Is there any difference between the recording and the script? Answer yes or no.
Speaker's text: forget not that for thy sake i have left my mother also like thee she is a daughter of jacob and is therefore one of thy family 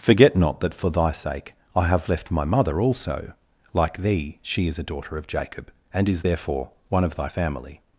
no